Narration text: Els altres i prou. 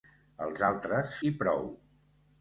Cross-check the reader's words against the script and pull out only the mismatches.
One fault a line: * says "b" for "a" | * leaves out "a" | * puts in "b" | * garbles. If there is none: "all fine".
all fine